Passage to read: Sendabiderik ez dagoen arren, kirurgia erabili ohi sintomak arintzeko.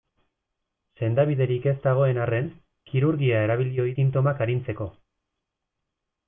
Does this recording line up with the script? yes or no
yes